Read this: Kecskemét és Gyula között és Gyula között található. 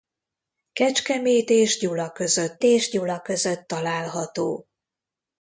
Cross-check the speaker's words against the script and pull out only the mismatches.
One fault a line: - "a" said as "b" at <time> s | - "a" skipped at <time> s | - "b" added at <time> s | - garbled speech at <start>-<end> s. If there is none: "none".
none